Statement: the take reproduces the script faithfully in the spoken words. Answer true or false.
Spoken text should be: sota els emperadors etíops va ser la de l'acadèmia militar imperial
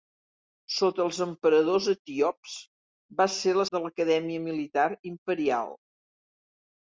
true